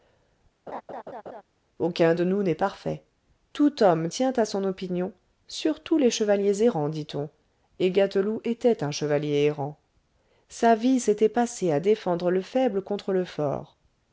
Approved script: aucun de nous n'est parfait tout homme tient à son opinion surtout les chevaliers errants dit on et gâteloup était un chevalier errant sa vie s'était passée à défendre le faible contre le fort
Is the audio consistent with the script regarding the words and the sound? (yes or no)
no